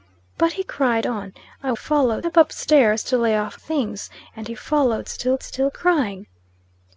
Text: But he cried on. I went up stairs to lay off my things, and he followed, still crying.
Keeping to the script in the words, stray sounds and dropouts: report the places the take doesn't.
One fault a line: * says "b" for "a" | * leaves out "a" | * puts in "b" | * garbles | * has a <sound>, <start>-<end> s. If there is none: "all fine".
* says "followed" for "went"
* leaves out "my"
* puts in "still"